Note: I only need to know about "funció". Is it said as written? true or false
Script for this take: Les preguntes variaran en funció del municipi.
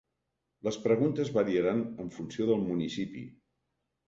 true